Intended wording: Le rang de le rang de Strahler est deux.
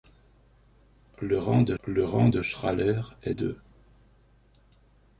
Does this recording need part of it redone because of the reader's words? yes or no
no